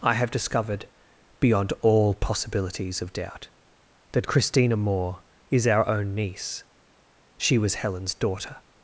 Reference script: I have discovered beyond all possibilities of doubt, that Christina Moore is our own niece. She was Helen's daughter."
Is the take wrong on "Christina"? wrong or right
right